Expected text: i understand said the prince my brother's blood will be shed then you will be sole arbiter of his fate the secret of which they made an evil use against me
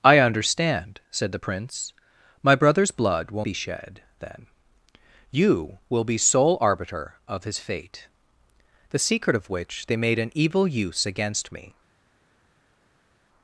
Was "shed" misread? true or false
false